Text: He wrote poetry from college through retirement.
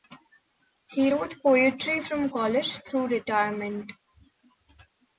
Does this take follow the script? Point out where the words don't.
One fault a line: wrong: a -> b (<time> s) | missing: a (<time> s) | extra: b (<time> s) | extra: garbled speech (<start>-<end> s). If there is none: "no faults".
no faults